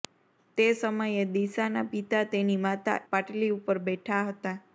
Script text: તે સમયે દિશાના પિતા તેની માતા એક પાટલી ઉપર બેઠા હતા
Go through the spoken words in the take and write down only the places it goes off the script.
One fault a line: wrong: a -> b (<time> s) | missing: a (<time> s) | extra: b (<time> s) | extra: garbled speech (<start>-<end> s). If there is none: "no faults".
missing: એક (3.0 s)